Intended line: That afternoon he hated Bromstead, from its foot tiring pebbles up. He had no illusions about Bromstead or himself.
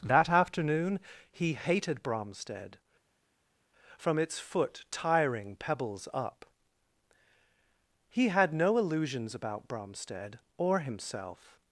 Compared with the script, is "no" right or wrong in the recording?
right